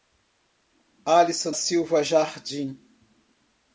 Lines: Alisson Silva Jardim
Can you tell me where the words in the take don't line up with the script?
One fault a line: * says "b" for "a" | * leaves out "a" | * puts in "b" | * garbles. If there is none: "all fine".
all fine